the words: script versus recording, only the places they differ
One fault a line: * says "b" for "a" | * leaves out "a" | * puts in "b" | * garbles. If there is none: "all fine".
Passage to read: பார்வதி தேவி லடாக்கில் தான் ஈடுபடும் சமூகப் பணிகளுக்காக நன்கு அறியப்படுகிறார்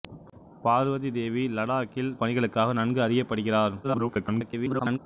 * leaves out "தான் ஈடுபடும் சமூகப்"
* garbles